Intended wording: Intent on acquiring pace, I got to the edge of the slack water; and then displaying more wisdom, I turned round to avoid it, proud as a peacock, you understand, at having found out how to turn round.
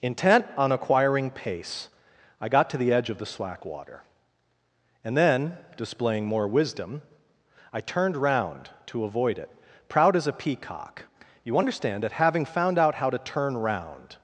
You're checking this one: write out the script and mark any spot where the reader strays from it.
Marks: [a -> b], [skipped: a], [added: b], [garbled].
Intent on acquiring pace, I got to the edge of the slack water; and then displaying more wisdom, I turned round to avoid it, proud as a peacock, you understand, [at -> that] having found out how to turn round.